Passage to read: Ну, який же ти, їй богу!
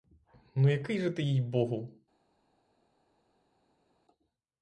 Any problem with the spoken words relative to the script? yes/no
no